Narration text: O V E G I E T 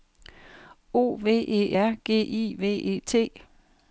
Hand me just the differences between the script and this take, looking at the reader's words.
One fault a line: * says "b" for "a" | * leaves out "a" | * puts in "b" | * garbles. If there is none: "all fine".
* puts in "R"
* puts in "V"